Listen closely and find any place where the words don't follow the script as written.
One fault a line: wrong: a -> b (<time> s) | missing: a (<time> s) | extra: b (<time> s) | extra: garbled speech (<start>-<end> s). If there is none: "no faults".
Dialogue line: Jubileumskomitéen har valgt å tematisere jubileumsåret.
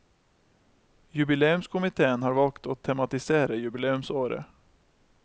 no faults